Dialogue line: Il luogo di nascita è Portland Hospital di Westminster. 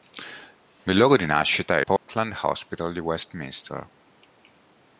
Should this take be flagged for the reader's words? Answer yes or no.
no